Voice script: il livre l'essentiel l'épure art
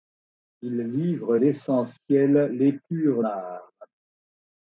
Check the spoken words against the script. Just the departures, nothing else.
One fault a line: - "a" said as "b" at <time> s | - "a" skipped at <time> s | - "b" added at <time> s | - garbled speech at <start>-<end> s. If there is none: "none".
none